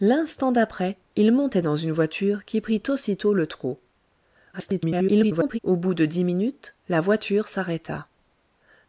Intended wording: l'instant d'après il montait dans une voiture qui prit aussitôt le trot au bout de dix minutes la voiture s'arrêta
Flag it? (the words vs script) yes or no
yes